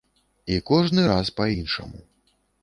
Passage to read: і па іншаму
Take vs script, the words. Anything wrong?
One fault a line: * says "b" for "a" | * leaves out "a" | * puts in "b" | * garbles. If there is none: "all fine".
* puts in "кожны раз"